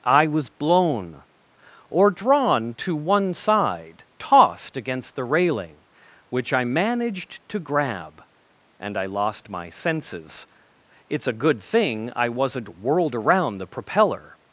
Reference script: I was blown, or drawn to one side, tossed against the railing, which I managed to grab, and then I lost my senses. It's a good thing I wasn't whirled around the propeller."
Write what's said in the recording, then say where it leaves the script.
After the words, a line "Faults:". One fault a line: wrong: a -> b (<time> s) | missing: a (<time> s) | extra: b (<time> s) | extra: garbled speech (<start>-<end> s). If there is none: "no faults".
I was blown, or drawn to one side, tossed against the railing, which I managed to grab, and I lost my senses. It's a good thing I wasn't whirled around the propeller."
Faults:
missing: then (9.0 s)